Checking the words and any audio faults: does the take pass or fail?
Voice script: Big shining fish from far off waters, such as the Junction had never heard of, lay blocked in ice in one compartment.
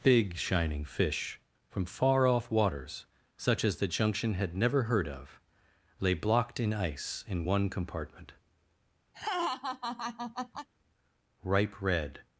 fail